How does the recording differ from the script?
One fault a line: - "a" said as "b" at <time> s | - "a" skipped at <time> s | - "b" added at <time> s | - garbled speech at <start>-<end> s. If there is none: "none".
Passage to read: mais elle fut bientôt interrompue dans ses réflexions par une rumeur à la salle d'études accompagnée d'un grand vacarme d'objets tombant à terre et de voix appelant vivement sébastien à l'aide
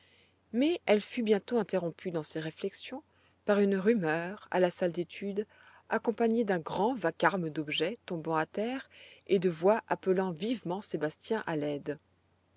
none